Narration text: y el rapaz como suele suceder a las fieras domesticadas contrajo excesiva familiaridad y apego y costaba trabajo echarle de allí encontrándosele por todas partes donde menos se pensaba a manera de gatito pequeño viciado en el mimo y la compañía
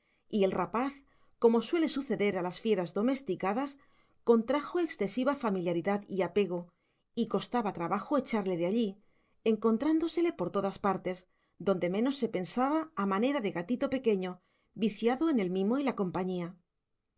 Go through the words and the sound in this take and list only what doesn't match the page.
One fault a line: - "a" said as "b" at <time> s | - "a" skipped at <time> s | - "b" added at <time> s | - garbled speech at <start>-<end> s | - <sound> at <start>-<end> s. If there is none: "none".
none